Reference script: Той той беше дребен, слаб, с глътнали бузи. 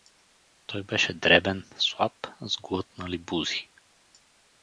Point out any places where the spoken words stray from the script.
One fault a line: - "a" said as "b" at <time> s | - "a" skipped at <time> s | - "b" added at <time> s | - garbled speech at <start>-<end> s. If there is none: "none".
- "той" skipped at 0.8 s